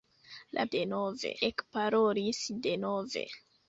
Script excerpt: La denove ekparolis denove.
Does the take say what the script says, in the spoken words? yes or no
yes